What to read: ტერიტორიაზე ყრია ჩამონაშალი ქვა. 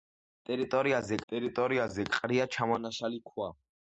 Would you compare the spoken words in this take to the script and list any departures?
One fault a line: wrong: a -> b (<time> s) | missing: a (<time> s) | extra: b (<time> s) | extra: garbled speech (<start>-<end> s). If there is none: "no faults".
extra: ტერიტორიაზე (1.3 s)